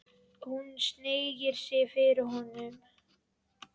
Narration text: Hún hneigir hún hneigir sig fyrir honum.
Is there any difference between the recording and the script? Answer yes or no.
yes